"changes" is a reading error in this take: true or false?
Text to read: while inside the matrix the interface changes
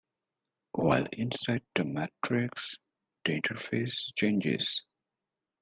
false